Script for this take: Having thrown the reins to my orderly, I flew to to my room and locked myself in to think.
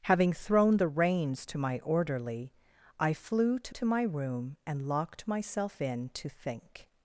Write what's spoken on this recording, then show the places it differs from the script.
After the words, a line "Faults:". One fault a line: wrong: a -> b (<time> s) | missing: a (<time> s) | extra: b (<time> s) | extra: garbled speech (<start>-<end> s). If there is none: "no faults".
Having thrown the reins to my orderly, I flew to to my room and locked myself in to think.
Faults:
no faults